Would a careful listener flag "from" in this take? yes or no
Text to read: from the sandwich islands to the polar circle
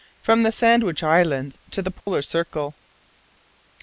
no